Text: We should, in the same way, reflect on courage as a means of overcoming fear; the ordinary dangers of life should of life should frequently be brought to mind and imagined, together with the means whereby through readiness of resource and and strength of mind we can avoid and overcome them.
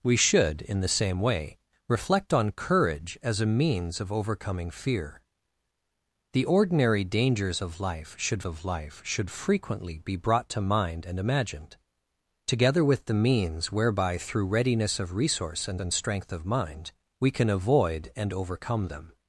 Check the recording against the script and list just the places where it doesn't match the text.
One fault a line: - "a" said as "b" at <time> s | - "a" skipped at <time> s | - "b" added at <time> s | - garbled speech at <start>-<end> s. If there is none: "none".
none